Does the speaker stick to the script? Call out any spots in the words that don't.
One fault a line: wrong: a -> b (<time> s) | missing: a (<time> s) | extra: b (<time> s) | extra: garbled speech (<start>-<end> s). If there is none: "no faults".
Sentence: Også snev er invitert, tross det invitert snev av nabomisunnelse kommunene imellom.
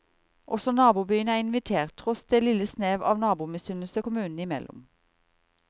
wrong: snev -> nabobyene (0.7 s)
wrong: invitert -> lille (2.4 s)